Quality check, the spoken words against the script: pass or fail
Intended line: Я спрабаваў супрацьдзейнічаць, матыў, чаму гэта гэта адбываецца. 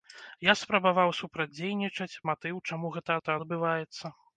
pass